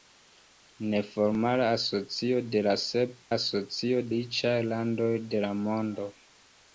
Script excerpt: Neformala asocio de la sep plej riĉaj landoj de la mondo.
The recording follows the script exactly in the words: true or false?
false